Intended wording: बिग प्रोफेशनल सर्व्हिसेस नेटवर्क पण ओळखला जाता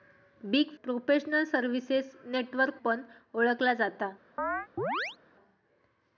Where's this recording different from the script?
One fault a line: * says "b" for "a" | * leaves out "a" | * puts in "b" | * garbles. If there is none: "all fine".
all fine